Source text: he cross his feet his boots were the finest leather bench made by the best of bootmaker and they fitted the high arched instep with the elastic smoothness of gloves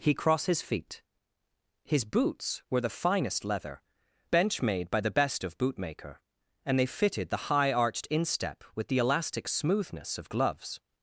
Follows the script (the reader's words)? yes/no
yes